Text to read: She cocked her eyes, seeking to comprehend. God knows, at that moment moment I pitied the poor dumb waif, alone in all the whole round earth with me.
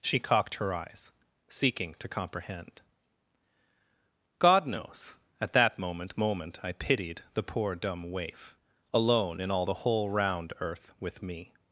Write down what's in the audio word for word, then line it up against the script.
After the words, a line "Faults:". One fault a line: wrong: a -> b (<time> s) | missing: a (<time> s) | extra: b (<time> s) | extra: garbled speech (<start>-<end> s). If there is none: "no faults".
She cocked her eyes, seeking to comprehend. God knows, at that moment moment I pitied the poor dumb waif, alone in all the whole round earth with me.
Faults:
no faults